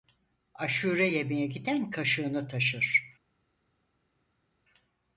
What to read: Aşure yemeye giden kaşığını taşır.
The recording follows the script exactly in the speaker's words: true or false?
true